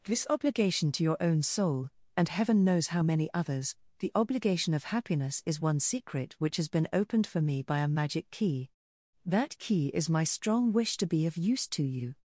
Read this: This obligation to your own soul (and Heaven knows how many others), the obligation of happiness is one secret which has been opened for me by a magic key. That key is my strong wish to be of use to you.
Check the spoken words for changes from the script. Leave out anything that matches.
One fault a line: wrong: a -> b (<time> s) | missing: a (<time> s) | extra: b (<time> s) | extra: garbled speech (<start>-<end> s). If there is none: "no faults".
no faults